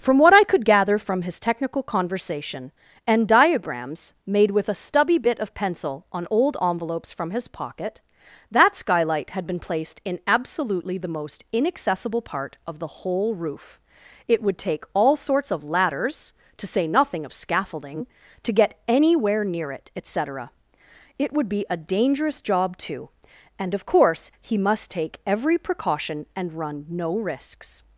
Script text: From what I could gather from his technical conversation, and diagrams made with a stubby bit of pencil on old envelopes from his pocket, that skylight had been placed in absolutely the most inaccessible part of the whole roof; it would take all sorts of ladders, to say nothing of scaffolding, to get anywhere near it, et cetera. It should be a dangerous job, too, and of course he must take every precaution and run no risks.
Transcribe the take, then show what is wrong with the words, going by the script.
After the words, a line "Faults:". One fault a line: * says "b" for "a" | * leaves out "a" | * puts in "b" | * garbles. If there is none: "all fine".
From what I could gather from his technical conversation, and diagrams made with a stubby bit of pencil on old envelopes from his pocket, that skylight had been placed in absolutely the most inaccessible part of the whole roof; it would take all sorts of ladders, to say nothing of scaffolding, to get anywhere near it, et cetera. It would be a dangerous job, too, and of course he must take every precaution and run no risks.
Faults:
* says "would" for "should"